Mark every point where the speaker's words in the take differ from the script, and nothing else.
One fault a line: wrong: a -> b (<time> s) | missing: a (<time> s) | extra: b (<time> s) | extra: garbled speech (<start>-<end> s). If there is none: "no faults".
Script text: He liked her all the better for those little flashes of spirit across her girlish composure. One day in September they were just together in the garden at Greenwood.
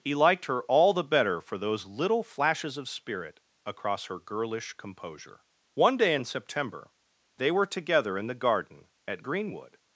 missing: just (7.7 s)